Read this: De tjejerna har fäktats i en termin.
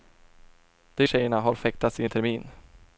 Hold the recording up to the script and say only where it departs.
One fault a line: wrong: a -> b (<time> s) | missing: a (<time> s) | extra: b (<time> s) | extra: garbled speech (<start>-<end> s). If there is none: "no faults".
no faults